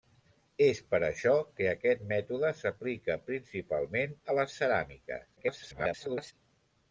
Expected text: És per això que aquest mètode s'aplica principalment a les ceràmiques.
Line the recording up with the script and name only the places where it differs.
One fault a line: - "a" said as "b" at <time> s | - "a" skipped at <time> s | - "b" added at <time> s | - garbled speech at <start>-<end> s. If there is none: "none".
- garbled speech at 5.4-6.3 s